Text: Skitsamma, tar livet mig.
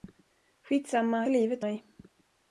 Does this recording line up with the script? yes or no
yes